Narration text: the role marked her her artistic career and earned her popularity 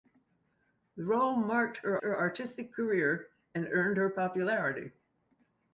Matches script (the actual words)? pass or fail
pass